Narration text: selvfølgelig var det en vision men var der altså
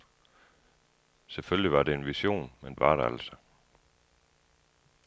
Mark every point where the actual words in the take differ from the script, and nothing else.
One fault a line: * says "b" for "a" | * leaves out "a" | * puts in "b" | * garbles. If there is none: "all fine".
all fine